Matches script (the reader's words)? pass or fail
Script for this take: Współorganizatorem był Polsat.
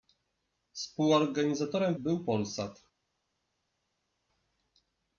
pass